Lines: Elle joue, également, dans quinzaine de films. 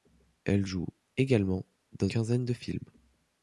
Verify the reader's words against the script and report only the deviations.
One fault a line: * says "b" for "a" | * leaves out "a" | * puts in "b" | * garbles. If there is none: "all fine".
all fine